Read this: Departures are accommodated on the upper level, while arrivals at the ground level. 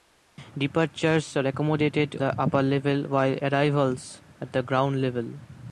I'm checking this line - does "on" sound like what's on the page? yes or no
no